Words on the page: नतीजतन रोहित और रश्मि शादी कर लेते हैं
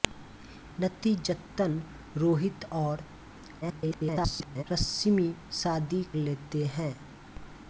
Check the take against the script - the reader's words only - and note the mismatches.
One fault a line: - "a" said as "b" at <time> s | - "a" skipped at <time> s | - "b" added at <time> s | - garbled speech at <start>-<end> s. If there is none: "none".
- garbled speech at 3.6-4.6 s
- "कर" skipped at 6.0 s